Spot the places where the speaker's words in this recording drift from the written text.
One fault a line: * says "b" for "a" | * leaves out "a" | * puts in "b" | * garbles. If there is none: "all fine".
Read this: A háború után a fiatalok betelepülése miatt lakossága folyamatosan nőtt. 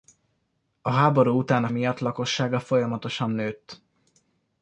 * leaves out "fiatalok betelepülése"